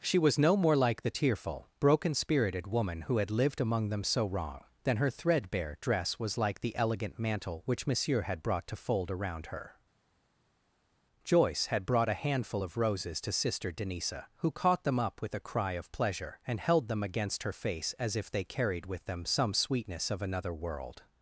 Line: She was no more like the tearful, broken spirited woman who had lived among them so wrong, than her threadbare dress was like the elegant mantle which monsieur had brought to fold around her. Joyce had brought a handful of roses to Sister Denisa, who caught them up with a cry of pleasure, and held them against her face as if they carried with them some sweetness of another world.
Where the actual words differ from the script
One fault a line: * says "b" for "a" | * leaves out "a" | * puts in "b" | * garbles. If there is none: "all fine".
all fine